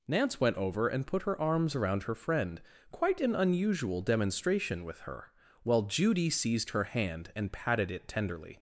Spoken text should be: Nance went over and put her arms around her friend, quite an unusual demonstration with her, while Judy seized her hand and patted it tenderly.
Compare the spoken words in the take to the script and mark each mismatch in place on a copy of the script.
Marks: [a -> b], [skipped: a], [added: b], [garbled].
Nance went over and put her arms around her friend, quite an unusual demonstration with her, while Judy seized her hand and patted it tenderly.